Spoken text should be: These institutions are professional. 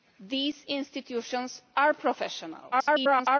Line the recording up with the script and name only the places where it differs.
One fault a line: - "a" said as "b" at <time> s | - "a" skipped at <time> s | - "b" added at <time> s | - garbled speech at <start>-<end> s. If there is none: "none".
- garbled speech at 2.7-3.4 s